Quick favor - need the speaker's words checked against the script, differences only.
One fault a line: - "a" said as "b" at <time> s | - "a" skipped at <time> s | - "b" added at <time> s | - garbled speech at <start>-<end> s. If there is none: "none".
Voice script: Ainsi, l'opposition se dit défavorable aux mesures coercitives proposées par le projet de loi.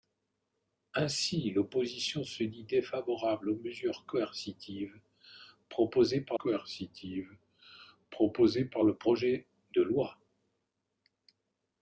- "coercitives proposées par" added at 6.4 s